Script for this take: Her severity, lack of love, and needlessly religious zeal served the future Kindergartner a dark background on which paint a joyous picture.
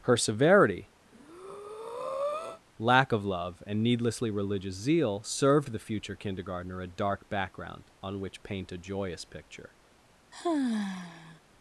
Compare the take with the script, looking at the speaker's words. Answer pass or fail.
pass